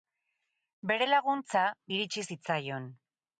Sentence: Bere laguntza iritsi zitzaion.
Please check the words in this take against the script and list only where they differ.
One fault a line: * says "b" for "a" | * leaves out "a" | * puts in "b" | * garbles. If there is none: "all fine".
all fine